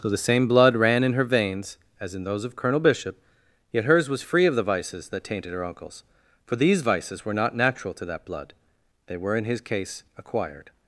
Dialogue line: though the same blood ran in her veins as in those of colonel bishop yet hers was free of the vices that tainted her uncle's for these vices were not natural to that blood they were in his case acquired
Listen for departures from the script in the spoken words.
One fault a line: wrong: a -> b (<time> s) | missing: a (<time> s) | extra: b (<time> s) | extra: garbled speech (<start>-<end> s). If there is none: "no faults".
no faults